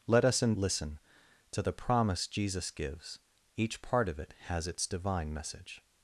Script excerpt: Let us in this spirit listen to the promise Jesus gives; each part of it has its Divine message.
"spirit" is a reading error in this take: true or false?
true